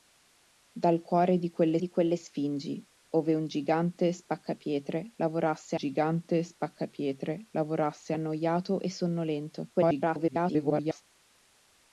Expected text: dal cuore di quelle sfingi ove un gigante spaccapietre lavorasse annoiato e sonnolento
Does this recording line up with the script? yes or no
no